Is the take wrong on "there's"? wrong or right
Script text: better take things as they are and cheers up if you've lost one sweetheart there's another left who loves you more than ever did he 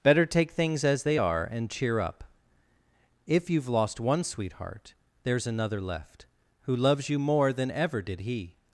right